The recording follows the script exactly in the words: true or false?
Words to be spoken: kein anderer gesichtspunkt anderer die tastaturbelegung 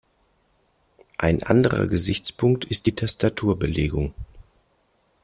false